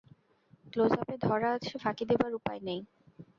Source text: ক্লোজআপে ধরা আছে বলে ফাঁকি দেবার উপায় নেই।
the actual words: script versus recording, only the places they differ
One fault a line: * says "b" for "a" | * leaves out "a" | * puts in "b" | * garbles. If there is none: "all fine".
* leaves out "বলে"